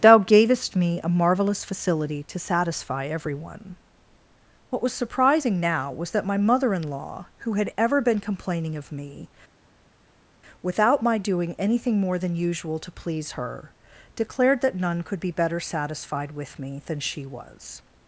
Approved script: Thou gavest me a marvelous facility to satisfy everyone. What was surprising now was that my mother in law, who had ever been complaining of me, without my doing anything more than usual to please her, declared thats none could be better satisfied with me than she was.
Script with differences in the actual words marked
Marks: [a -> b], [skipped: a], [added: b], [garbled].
Thou gavest me a marvelous facility to satisfy everyone. What was surprising now was that my mother in law, who had ever been complaining of me, without my doing anything more than usual to please her, declared [thats -> that] none could be better satisfied with me than she was.